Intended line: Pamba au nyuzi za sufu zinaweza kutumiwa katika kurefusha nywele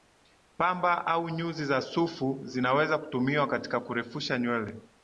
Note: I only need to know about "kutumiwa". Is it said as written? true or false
true